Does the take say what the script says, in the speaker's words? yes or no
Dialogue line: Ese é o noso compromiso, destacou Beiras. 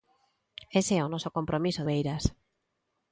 no